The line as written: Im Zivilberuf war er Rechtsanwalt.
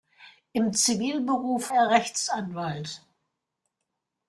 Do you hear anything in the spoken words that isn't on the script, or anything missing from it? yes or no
yes